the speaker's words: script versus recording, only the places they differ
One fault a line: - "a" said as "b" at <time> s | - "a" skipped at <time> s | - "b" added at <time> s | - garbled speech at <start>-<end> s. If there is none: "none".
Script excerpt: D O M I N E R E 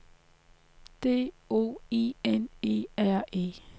- "M" skipped at 1.8 s